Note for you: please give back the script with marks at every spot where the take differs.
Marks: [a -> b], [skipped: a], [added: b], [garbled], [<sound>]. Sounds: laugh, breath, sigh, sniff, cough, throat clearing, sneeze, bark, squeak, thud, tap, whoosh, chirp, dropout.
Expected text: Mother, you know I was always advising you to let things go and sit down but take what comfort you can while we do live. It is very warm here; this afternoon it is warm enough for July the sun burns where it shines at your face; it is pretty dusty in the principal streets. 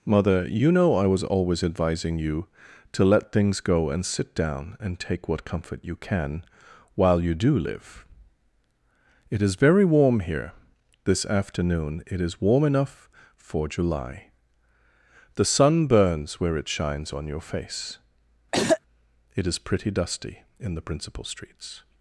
Mother, you know I was always advising you to let things go and sit down [but -> and] take what comfort you can while [we -> you] do live. It is very warm here; this afternoon it is warm enough for July the sun burns where it shines [at -> on] your face; [throat clearing] it is pretty dusty in the principal streets.